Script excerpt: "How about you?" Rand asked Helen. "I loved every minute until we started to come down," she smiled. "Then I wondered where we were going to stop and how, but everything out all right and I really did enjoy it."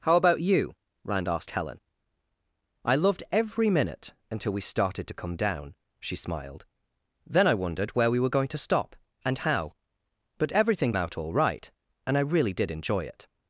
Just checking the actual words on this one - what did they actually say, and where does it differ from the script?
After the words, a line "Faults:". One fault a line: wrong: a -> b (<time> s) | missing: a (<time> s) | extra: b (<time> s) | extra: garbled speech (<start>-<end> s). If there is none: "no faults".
"How about you?" Rand asked Helen. "I loved every minute until we started to come down," she smiled. "Then I wondered where we were going to stop and how, but everything out all right and I really did enjoy it."
Faults:
no faults